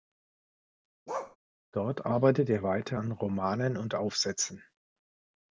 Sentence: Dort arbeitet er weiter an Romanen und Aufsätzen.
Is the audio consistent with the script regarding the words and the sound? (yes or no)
no